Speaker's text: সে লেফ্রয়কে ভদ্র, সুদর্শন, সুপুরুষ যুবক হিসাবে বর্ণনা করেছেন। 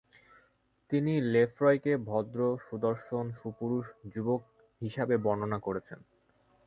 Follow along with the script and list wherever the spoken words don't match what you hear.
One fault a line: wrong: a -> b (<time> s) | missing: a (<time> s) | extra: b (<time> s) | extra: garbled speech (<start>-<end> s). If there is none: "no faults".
wrong: সে -> তিনি (0.9 s)